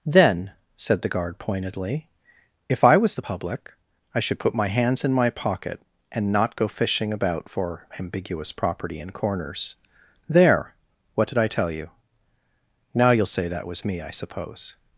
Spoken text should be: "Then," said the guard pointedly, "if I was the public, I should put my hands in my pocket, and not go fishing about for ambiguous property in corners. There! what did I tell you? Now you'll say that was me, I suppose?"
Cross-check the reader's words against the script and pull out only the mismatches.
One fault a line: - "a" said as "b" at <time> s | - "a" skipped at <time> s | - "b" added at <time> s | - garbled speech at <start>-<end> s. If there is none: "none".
none